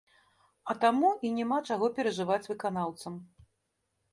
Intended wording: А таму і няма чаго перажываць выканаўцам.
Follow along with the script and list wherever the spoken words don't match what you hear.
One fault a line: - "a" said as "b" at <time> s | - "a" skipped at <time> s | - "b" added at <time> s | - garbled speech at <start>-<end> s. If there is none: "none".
none